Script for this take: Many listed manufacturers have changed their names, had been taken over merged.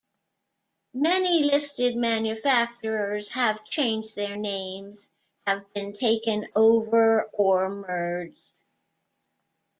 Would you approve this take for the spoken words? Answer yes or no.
no